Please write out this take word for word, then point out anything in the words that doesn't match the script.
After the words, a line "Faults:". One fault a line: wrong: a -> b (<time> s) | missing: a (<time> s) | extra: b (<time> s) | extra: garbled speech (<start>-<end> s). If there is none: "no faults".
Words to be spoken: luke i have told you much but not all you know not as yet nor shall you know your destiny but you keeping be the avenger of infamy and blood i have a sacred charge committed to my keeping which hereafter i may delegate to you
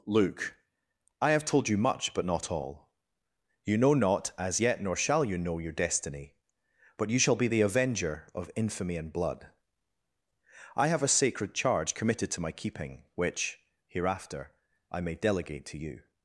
luke i have told you much but not all you know not as yet nor shall you know your destiny but you shall be the avenger of infamy and blood i have a sacred charge committed to my keeping which hereafter i may delegate to you
Faults:
wrong: keeping -> shall (7.2 s)